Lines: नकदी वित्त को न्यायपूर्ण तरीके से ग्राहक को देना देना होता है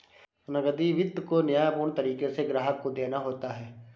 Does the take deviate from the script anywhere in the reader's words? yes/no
yes